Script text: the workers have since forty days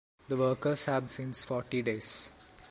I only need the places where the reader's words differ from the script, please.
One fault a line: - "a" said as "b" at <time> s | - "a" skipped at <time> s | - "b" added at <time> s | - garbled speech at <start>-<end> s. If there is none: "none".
none